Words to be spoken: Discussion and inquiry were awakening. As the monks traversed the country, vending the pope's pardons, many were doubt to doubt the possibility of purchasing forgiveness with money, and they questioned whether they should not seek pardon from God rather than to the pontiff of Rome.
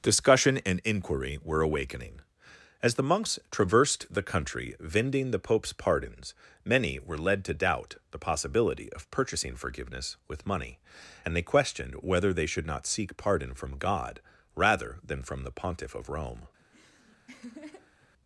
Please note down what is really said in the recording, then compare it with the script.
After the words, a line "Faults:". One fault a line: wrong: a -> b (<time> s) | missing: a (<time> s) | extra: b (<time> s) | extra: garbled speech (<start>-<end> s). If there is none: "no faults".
Discussion and inquiry were awakening. As the monks traversed the country, vending the pope's pardons, many were led to doubt the possibility of purchasing forgiveness with money, and they questioned whether they should not seek pardon from God rather than from the pontiff of Rome.
Faults:
wrong: doubt -> led (7.2 s)
wrong: to -> from (15.2 s)